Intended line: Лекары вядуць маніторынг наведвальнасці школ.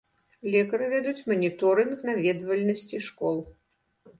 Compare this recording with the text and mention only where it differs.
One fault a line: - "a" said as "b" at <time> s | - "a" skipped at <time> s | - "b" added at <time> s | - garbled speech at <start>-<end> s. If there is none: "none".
none